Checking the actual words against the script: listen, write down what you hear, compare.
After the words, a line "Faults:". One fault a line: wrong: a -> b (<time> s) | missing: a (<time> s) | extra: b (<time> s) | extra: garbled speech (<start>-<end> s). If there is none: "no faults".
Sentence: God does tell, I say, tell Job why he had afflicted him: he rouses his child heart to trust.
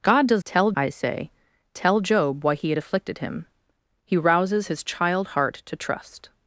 God does tell, I say, tell Job why he had afflicted him: he rouses his child heart to trust.
Faults:
no faults